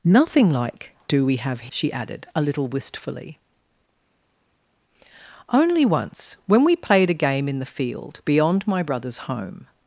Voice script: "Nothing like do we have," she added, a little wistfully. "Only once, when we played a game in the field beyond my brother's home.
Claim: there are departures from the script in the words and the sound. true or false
false